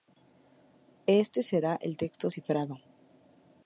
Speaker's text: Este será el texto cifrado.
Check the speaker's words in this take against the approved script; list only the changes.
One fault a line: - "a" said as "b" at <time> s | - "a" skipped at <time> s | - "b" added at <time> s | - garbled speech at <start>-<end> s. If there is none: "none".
none